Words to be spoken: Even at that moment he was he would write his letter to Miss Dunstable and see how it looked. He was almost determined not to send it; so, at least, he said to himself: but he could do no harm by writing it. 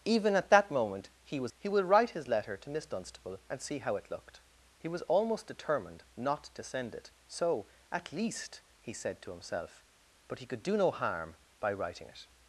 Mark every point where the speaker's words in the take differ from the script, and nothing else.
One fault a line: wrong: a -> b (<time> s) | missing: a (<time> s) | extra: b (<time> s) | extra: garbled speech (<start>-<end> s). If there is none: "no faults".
no faults